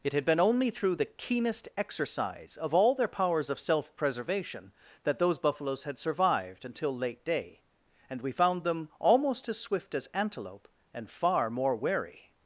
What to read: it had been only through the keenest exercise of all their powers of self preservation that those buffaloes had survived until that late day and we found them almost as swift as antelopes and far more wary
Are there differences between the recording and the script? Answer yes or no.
yes